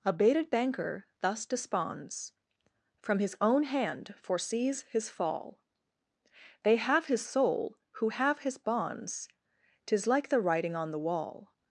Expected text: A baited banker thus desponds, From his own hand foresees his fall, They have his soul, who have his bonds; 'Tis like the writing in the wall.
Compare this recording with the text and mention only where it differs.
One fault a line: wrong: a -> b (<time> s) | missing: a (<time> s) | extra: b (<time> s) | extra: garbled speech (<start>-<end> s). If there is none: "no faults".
wrong: in -> on (10.8 s)